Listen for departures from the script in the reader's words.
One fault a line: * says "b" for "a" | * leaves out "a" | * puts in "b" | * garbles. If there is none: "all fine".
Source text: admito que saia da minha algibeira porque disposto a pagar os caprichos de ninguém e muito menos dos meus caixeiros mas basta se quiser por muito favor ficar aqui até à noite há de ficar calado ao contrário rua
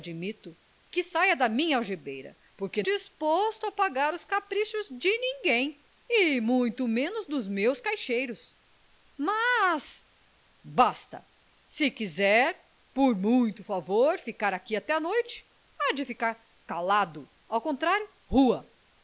all fine